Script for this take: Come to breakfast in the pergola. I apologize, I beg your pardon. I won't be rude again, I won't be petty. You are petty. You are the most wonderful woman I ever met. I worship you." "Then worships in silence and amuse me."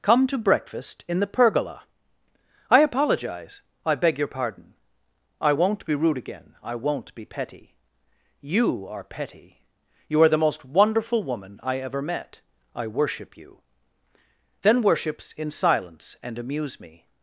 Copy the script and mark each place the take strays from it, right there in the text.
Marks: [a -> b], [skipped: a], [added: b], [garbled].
Come to breakfast in the pergola. I apologize, I beg your pardon. I won't be rude again, I won't be petty. You are petty. You are the most wonderful woman I ever met. I worship you." "Then worships in silence and amuse me."